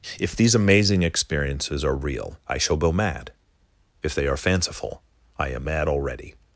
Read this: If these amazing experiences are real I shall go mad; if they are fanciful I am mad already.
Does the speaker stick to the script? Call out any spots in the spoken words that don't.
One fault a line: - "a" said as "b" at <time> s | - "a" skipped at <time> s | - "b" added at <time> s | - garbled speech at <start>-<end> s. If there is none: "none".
none